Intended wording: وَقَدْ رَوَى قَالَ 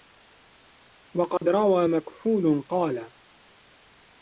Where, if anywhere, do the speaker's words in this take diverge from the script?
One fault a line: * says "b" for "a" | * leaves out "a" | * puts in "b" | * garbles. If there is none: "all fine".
* puts in "مَكْحُولٌ"